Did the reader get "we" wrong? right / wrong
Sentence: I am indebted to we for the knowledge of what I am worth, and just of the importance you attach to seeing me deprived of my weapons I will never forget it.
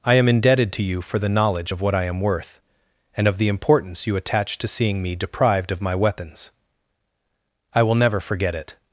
wrong